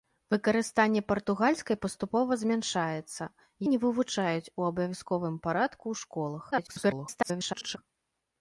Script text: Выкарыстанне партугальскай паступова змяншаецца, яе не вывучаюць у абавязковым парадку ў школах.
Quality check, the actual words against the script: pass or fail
fail